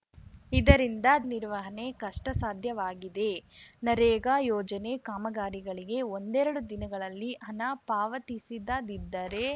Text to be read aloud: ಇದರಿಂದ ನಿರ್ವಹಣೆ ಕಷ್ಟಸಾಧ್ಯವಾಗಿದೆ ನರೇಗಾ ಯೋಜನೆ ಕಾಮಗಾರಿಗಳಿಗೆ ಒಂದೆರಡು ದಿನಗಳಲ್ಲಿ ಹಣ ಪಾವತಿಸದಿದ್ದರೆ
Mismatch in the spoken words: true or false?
false